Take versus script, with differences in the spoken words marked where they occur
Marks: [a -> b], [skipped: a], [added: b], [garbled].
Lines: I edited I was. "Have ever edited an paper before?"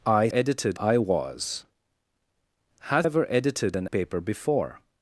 I edited I was. "Have ever edited an paper before?"